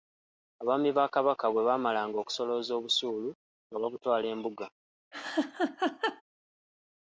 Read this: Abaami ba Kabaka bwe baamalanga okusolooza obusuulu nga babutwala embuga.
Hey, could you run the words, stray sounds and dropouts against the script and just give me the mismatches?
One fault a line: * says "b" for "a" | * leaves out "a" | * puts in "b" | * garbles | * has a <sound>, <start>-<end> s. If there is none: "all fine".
* has a laugh, 5.1-6.2 s